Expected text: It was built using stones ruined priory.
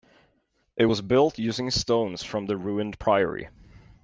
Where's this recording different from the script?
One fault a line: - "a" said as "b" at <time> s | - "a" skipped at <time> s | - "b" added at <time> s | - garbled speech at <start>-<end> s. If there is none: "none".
- "from the" added at 2.2 s